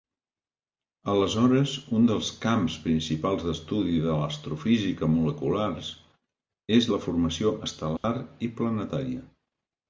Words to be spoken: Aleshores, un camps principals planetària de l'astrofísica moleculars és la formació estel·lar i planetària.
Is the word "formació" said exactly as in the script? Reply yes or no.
yes